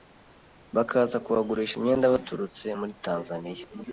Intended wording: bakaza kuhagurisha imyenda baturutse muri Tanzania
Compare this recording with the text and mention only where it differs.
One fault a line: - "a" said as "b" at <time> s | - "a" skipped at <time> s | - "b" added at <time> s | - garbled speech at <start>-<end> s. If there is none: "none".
none